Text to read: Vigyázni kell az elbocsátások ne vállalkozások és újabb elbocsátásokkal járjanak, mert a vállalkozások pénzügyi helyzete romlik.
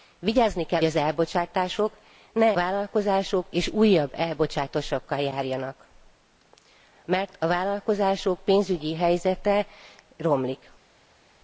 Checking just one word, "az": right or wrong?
right